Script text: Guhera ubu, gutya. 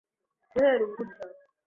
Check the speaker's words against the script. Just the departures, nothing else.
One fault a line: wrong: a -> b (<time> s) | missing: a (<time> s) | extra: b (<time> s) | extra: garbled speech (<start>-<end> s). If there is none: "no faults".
no faults